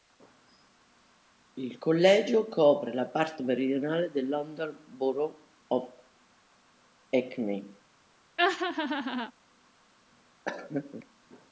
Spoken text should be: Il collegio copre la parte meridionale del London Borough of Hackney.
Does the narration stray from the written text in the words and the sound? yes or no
yes